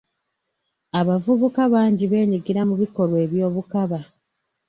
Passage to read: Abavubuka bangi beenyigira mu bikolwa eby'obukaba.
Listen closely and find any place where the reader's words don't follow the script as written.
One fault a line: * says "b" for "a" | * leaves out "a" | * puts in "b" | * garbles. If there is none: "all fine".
all fine